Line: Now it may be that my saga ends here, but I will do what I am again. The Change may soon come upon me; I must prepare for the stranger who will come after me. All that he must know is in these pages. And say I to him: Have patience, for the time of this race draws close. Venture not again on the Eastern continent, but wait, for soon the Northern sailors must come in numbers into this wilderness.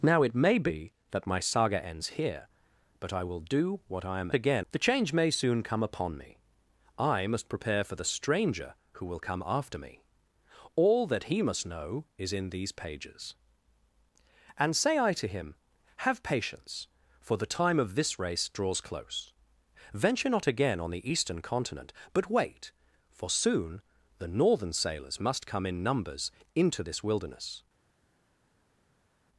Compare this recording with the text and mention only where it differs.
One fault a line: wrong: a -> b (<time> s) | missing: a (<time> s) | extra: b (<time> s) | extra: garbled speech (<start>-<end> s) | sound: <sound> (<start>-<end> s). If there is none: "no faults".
no faults